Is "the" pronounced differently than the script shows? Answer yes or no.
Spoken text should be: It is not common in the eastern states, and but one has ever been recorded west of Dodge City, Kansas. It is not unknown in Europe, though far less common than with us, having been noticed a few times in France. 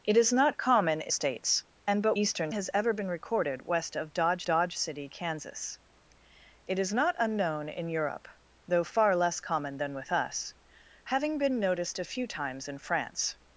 yes